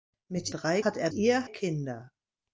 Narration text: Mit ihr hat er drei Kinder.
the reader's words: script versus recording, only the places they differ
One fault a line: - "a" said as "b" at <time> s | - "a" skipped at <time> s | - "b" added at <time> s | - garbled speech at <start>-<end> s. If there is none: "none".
- "ihr" said as "drei" at 0.5 s
- "drei" said as "ihr" at 1.1 s